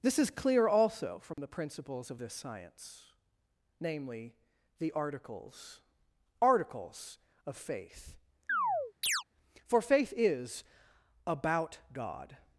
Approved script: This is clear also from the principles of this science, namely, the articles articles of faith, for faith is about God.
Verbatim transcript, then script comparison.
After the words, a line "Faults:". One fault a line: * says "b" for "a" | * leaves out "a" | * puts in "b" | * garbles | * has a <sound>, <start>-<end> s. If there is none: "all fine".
This is clear also from the principles of this science, namely, the articles articles of faith, for faith is about God.
Faults:
* has a dropout, 1.3-1.4 s
* has a chirp, 8.5-9.2 s